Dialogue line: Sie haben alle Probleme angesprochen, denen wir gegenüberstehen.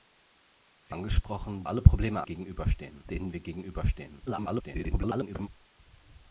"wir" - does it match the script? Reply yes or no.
yes